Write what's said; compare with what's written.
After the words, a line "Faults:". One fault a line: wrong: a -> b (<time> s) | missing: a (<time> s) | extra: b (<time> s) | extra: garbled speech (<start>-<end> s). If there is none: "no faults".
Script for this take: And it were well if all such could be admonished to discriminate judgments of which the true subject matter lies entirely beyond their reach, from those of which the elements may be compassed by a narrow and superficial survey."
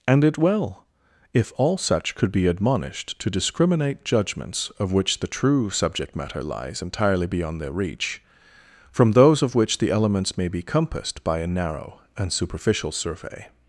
And it well if all such could be admonished to discriminate judgments of which the true subject matter lies entirely beyond their reach, from those of which the elements may be compassed by a narrow and superficial survey."
Faults:
missing: were (0.4 s)